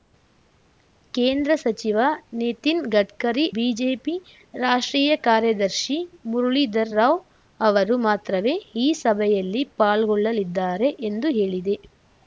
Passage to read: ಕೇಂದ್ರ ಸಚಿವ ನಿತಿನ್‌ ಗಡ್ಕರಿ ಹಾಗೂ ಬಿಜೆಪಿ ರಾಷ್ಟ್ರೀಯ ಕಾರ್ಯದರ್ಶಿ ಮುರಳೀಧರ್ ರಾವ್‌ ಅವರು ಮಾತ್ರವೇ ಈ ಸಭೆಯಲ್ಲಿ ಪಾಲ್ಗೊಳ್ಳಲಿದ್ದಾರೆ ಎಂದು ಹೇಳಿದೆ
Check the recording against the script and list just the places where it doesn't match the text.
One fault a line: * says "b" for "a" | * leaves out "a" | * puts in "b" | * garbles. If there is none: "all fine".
* leaves out "ಹಾಗೂ"